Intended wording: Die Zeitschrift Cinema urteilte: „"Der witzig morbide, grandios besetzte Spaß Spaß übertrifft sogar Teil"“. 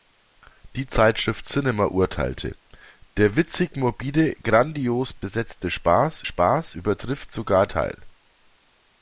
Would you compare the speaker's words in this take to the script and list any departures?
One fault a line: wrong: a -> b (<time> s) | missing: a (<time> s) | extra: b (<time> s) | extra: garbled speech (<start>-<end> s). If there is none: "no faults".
no faults